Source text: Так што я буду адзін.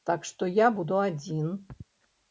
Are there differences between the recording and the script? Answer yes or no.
no